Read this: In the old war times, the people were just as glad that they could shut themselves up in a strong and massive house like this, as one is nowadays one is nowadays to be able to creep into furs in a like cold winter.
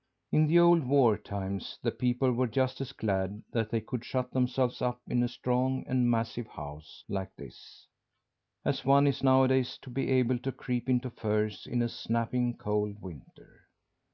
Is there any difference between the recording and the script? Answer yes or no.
yes